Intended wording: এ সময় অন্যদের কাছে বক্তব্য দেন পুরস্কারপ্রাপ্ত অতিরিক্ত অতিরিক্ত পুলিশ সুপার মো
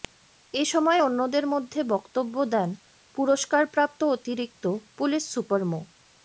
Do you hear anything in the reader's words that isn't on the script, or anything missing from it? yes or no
yes